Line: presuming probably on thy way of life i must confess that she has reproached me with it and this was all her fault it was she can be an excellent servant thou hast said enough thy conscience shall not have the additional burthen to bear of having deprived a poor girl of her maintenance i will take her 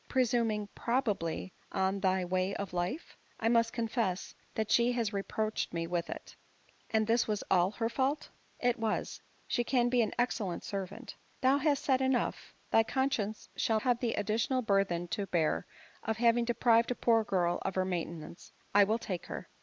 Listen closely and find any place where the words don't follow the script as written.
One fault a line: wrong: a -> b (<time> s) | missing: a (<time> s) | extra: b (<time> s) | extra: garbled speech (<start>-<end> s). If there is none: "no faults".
missing: not (13.8 s)